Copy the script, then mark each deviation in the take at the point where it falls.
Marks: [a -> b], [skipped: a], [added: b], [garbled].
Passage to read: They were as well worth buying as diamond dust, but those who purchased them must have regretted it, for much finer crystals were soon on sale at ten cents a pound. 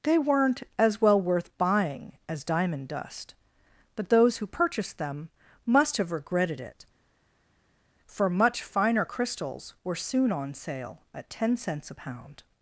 They [were -> weren't] as well worth buying as diamond dust, but those who purchased them must have regretted it, for much finer crystals were soon on sale at ten cents a pound.